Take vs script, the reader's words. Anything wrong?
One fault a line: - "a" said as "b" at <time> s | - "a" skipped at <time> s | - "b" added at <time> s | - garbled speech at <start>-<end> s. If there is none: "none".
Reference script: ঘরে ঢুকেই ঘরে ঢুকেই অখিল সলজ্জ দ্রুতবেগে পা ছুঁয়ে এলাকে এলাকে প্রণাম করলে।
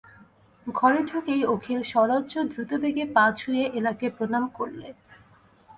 - "ঘরে ঢুকেই" skipped at 1.4 s
- "এলাকে" skipped at 4.1 s